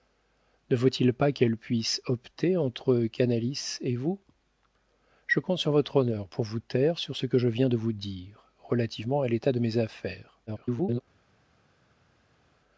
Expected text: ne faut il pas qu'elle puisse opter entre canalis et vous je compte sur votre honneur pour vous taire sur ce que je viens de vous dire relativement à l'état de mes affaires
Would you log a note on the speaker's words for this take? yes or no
yes